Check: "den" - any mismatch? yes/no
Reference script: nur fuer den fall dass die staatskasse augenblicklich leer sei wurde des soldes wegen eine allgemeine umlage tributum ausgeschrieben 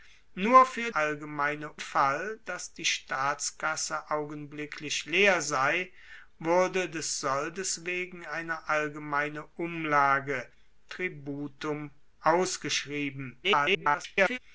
yes